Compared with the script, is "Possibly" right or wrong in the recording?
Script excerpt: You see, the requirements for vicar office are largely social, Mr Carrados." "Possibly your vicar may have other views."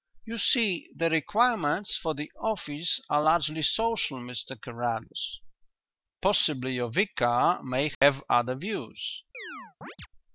right